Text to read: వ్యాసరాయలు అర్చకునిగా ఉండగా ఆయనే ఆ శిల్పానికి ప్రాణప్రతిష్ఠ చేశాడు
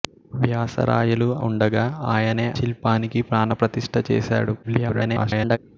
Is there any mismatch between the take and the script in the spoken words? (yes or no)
yes